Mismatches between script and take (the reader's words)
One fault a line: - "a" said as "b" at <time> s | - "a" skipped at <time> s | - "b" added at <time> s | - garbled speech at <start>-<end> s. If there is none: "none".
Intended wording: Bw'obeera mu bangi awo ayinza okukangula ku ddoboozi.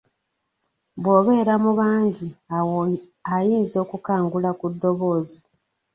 none